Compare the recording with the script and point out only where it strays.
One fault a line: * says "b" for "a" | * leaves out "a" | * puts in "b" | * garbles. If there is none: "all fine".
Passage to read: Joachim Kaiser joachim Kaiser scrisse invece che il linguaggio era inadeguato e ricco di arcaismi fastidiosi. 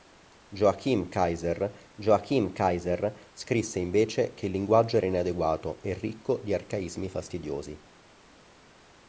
all fine